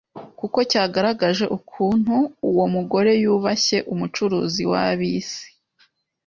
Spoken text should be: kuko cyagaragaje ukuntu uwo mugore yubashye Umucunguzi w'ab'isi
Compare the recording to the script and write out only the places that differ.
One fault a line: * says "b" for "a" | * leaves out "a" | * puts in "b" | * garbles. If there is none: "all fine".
all fine